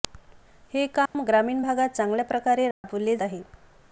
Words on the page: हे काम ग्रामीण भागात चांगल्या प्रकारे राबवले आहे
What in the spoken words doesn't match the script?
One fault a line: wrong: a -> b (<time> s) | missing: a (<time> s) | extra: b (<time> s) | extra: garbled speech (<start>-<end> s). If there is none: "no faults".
no faults